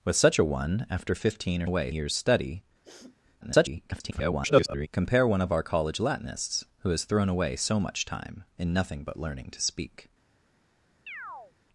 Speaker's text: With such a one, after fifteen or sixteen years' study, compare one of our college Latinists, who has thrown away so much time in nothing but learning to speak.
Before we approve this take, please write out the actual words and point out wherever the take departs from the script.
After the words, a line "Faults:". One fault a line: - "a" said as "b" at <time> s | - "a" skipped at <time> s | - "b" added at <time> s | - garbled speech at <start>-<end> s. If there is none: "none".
With such a one, after fifteen or away years' study, [garbled] compare one of our college Latinists, who has thrown away so much time in nothing but learning to speak.
Faults:
- "sixteen" said as "away" at 1.6 s
- garbled speech at 3.4-4.9 s